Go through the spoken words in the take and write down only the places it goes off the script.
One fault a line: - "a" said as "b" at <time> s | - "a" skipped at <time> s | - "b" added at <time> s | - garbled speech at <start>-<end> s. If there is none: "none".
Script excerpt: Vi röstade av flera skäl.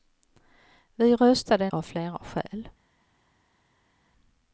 none